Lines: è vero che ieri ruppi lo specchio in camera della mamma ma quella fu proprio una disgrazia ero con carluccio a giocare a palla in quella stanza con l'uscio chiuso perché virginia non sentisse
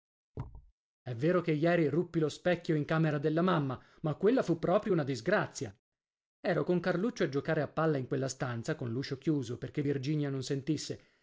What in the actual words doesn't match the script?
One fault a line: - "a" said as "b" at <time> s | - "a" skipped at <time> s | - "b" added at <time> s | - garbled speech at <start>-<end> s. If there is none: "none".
none